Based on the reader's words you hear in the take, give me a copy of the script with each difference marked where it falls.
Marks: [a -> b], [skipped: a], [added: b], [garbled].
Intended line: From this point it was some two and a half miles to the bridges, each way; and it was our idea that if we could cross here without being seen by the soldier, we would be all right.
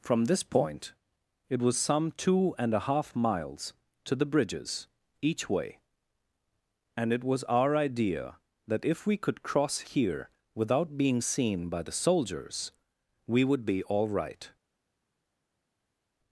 From this point it was some two and a half miles to the bridges, each way; and it was our idea that if we could cross here without being seen by the [soldier, -> soldiers] we would be all right.